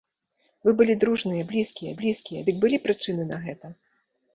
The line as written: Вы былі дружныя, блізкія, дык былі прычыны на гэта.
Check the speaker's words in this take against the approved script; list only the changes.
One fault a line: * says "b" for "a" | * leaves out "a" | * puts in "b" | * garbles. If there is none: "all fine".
* puts in "блізкія"